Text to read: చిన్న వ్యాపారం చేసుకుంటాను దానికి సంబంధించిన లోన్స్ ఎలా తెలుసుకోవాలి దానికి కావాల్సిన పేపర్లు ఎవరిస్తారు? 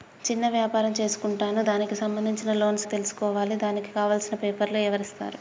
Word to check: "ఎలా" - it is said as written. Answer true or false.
false